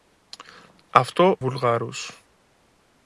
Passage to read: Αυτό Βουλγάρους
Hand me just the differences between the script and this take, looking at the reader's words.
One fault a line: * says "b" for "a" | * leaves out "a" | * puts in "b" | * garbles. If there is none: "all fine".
all fine